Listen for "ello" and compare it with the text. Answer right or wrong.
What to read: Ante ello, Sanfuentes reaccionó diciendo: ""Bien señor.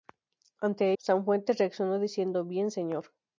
wrong